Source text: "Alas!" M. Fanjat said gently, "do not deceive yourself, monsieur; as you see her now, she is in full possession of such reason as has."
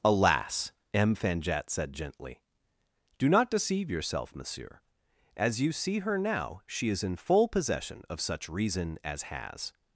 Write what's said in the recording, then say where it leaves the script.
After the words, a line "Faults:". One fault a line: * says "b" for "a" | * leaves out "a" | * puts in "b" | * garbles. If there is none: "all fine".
"Alas!" M. Fanjat said gently, "do not deceive yourself, monsieur; as you see her now, she is in full possession of such reason as has."
Faults:
all fine